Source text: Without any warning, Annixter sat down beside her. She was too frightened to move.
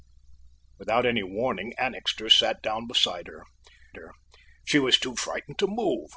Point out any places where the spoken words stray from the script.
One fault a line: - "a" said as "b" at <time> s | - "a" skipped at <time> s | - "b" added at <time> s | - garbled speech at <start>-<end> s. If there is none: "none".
- "her" added at 4.0 s